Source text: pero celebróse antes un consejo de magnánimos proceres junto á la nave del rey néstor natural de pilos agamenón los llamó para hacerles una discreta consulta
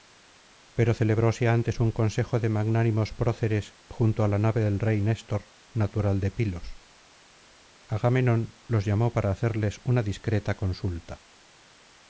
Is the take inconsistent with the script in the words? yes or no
no